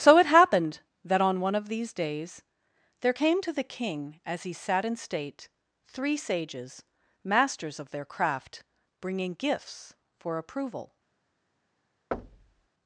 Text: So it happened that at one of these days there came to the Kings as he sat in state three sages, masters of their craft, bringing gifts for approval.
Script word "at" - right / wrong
wrong